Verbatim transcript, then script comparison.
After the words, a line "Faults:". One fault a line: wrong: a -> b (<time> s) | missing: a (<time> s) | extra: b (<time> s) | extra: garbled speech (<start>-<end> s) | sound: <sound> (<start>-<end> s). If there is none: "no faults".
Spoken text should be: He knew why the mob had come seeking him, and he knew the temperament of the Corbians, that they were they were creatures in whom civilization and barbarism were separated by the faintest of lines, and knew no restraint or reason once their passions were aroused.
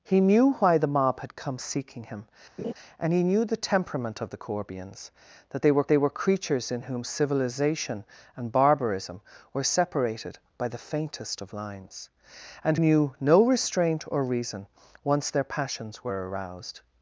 He knew why the mob had come seeking him, and he knew the temperament of the Corbians, that they were they were creatures in whom civilization and barbarism were separated by the faintest of lines, and knew no restraint or reason once their passions were aroused.
Faults:
sound: laugh (2.6-2.7 s)